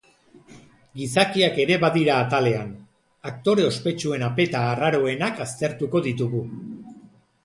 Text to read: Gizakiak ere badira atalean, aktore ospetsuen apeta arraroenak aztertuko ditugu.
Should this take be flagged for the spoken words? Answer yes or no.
no